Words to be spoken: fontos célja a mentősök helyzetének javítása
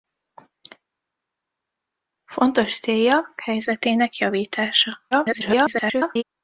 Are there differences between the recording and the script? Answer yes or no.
yes